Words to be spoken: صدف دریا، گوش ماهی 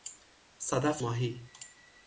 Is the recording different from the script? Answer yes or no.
yes